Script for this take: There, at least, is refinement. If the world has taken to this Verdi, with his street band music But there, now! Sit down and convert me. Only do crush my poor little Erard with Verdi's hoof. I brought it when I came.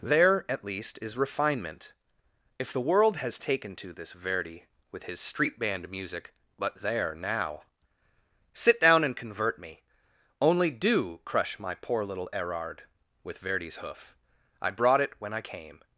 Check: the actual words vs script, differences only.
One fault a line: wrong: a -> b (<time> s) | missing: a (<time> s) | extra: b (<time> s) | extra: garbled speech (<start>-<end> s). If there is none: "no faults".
no faults